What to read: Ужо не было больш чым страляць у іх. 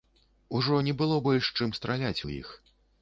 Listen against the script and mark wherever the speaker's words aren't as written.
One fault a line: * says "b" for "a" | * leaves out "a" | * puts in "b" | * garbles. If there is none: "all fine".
all fine